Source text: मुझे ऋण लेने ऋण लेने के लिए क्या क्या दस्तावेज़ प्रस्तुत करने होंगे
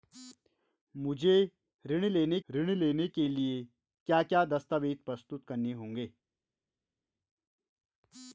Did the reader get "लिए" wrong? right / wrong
right